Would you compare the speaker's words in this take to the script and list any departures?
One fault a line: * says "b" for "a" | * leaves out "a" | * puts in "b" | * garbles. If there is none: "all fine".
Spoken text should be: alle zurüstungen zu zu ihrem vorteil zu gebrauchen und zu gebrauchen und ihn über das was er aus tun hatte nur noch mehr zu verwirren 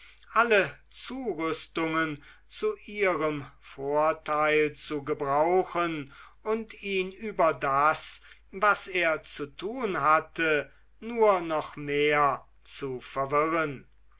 * leaves out "zu"
* leaves out "zu gebrauchen und"
* says "zu" for "aus"